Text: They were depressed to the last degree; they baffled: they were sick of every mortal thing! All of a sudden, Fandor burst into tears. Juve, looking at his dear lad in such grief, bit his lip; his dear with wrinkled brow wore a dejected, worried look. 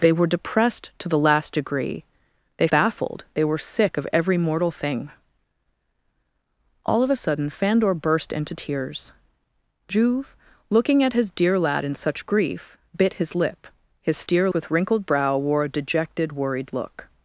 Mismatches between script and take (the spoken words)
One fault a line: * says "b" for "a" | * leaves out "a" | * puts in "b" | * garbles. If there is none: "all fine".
all fine